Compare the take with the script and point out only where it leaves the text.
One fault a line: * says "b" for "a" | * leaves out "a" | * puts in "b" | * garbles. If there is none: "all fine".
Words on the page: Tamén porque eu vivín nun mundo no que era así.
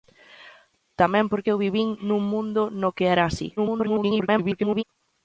* garbles